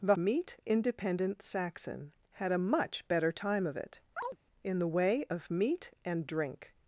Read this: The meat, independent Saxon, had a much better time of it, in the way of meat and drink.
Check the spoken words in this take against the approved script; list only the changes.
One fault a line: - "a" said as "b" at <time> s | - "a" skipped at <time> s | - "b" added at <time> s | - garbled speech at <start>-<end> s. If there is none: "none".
none